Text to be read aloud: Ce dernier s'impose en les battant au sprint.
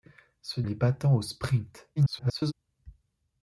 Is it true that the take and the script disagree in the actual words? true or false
true